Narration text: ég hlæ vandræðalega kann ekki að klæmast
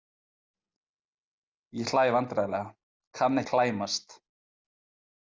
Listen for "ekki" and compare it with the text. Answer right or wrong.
wrong